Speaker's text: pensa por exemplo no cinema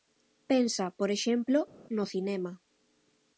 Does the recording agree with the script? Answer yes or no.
yes